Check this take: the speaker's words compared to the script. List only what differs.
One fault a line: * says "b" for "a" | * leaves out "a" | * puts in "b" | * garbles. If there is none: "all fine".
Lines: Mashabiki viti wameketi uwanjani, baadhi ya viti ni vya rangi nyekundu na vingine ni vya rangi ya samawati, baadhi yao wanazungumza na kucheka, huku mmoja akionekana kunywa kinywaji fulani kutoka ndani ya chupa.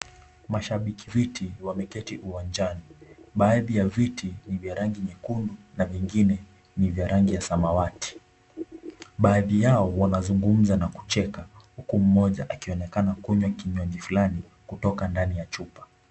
all fine